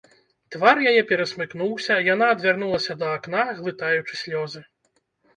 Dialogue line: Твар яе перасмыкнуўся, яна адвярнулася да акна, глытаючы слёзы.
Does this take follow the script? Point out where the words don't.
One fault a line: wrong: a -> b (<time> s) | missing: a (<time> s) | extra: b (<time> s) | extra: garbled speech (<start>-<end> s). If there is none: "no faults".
no faults